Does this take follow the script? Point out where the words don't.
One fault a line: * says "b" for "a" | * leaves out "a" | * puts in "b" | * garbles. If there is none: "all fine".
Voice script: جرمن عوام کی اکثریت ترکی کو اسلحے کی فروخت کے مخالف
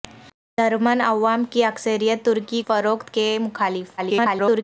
* leaves out "کو اسلحے کی"
* garbles